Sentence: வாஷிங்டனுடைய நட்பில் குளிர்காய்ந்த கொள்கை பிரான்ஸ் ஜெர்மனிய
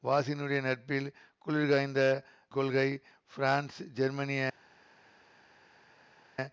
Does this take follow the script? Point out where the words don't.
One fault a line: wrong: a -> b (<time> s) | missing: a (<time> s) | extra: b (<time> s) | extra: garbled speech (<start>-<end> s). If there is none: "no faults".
no faults